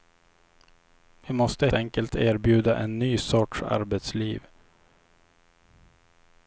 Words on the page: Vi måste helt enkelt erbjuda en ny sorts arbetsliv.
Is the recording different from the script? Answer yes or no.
yes